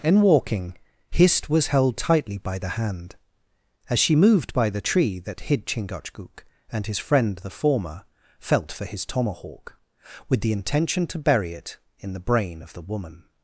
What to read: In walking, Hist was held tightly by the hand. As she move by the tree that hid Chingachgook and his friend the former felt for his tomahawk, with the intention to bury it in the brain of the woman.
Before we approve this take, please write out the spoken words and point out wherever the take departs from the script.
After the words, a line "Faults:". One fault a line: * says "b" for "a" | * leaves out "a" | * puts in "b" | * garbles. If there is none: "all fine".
In walking, Hist was held tightly by the hand. As she moved by the tree that hid Chingachgook and his friend the former felt for his tomahawk, with the intention to bury it in the brain of the woman.
Faults:
* says "moved" for "move"